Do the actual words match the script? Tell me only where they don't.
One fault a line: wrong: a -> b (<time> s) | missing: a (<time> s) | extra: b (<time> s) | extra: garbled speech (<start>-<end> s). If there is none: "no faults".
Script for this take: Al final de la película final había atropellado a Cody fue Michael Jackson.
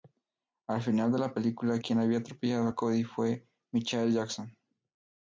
wrong: final -> quien (1.8 s)